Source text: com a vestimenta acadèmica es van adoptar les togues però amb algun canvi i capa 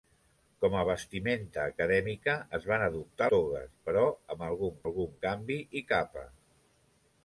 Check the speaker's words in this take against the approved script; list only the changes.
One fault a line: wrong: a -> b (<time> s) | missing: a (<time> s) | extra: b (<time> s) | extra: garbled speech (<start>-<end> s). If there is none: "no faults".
missing: les (3.3 s)
extra: algun (4.9 s)